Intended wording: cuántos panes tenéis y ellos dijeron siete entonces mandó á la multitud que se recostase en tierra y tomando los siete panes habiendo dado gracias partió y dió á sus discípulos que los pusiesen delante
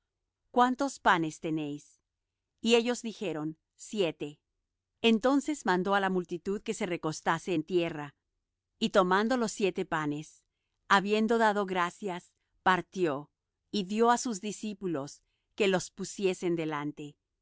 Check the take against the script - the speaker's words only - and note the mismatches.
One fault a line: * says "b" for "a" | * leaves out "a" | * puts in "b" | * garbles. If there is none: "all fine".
all fine